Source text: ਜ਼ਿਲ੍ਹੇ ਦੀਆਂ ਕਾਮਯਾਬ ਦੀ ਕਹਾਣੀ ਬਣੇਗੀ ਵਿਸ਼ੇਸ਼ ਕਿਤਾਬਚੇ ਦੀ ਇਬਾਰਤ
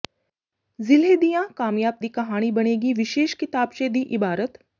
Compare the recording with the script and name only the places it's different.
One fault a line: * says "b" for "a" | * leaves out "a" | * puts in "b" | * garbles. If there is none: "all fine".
all fine